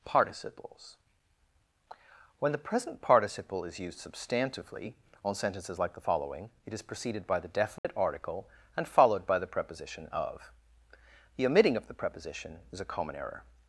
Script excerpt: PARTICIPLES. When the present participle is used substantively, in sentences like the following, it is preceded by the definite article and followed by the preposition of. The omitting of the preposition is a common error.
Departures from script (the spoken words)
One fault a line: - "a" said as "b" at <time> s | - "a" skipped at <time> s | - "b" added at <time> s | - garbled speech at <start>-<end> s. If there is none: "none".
- "in" said as "on" at 5.2 s